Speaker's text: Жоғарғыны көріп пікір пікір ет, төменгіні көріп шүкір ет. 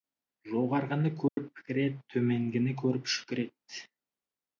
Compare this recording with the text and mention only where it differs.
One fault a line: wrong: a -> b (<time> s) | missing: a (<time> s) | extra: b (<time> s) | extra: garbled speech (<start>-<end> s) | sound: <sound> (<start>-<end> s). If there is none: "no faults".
sound: dropout (1.3-1.4 s)
missing: пікір (1.8 s)